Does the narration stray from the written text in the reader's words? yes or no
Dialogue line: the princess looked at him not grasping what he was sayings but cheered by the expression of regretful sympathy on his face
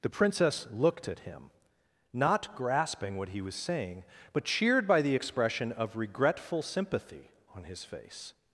yes